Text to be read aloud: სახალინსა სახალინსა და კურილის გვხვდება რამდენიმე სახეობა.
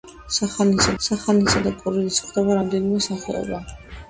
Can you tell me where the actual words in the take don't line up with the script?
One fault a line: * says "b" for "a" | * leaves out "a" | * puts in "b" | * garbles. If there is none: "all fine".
all fine